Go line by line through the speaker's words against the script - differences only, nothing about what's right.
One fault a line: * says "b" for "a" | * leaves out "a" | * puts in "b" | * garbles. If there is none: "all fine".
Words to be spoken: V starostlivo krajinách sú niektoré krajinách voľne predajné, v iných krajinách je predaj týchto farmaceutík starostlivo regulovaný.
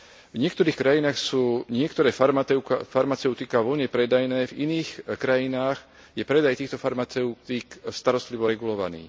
* says "niektorých" for "starostlivo"
* says "farmaceutiká" for "krajinách"